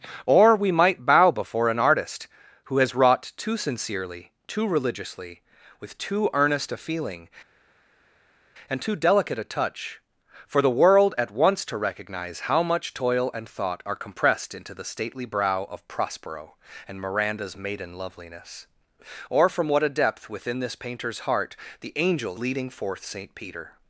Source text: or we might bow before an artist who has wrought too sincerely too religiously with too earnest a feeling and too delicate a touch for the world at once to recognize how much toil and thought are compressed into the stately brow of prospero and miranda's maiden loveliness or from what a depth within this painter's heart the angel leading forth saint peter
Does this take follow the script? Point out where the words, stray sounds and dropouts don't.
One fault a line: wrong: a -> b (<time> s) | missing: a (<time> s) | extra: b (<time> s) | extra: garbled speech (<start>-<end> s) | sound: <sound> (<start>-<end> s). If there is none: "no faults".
no faults